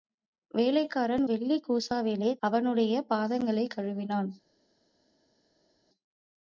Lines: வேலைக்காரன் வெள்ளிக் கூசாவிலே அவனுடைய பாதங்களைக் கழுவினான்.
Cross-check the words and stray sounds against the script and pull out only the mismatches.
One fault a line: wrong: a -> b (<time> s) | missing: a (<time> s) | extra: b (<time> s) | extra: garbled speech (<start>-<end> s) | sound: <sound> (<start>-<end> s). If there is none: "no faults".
no faults